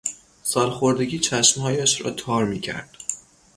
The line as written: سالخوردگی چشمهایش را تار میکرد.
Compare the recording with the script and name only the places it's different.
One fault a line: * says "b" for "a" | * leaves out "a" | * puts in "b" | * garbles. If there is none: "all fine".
all fine